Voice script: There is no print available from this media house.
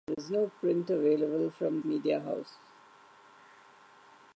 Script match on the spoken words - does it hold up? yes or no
no